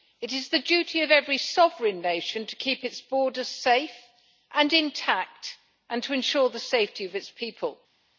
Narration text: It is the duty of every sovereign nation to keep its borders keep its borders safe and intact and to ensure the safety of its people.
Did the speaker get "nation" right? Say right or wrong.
right